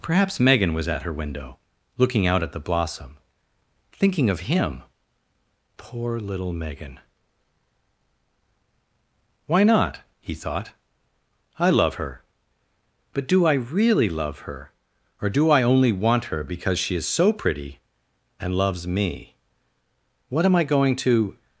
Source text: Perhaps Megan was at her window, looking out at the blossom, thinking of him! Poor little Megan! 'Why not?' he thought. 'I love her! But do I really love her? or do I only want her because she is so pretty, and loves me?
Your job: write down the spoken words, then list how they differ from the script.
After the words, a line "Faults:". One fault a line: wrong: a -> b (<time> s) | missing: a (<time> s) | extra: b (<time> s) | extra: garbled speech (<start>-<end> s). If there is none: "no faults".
Perhaps Megan was at her window, looking out at the blossom, thinking of him! Poor little Megan! 'Why not?' he thought. 'I love her! But do I really love her? or do I only want her because she is so pretty, and loves me? What am I going to
Faults:
extra: What am I going to (20.3 s)